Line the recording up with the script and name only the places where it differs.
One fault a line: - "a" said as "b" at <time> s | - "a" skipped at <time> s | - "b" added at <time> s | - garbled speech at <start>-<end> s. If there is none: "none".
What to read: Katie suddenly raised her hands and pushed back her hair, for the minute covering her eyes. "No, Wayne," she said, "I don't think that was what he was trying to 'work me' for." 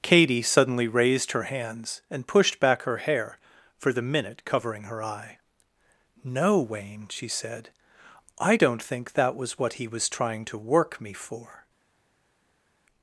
- "eyes" said as "eye" at 5.0 s